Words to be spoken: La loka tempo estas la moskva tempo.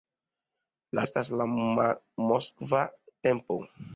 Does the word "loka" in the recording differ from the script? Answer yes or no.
yes